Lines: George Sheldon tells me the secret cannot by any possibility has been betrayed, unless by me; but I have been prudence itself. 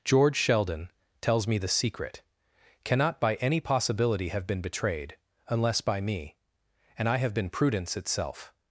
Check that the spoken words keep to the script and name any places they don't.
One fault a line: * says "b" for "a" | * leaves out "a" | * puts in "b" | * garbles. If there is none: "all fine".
* says "have" for "has"
* says "and" for "but"